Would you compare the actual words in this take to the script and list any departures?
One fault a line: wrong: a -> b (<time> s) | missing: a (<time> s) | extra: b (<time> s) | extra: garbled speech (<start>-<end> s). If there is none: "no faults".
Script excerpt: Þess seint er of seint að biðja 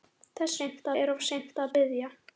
no faults